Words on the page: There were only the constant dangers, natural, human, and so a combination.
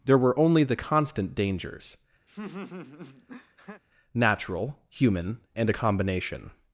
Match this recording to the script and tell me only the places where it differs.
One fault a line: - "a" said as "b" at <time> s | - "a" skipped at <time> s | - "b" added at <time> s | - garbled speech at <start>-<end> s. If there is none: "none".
- "so" skipped at 5.7 s